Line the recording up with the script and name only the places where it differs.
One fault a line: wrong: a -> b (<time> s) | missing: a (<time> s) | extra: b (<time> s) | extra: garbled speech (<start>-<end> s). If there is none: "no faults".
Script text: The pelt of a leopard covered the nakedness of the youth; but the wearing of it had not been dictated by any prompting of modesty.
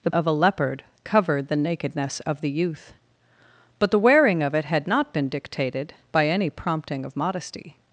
missing: pelt (0.1 s)